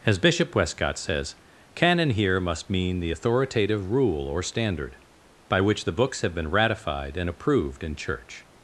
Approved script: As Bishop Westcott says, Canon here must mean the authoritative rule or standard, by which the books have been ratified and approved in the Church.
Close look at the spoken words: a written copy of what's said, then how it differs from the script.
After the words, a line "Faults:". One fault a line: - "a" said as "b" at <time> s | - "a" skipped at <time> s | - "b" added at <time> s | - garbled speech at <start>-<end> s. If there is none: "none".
As Bishop Westcott says, Canon here must mean the authoritative rule or standard, by which the books have been ratified and approved in Church.
Faults:
- "the" skipped at 8.0 s